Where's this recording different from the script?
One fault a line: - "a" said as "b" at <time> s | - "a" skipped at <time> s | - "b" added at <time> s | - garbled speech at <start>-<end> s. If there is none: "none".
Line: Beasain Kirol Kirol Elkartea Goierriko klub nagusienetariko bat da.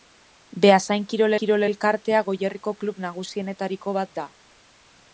none